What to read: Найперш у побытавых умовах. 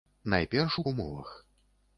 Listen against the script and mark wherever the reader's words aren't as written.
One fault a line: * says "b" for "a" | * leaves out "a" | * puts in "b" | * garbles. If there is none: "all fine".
* leaves out "побытавых"